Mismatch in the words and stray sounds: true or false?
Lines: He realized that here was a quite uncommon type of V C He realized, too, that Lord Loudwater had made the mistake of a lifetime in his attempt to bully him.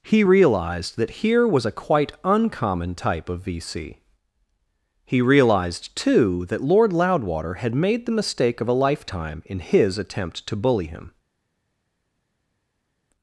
false